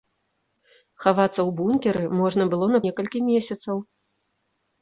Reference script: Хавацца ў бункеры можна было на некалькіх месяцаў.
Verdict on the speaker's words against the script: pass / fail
pass